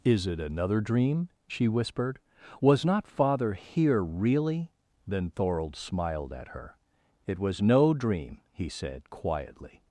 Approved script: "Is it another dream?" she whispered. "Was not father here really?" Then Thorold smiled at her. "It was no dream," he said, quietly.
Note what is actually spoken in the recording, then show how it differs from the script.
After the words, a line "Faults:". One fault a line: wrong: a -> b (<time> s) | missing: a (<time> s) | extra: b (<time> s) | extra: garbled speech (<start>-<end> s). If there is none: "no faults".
"Is it another dream?" she whispered. "Was not father here really?" Then Thorold smiled at her. "It was no dream," he said, quietly.
Faults:
no faults